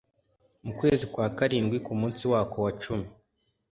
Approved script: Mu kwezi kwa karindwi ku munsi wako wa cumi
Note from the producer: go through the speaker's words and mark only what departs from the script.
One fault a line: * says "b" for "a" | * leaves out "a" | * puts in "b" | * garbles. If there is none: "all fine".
all fine